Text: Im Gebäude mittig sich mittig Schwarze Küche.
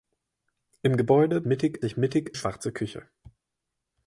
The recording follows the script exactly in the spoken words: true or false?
true